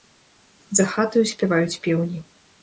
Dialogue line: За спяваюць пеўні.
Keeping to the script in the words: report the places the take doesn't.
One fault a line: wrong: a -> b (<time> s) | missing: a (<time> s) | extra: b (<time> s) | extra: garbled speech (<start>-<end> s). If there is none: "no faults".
extra: хатаю (0.9 s)